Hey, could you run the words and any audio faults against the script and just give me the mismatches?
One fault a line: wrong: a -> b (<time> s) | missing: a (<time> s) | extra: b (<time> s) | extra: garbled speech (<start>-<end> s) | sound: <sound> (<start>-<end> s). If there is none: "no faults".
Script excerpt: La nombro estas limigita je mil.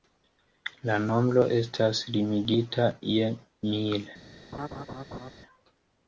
sound: laugh (4.5-5.3 s)